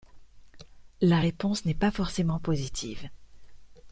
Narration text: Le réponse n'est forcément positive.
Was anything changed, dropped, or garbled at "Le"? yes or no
yes